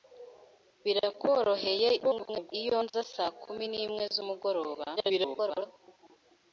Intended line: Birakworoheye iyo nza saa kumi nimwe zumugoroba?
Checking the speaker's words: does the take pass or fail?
fail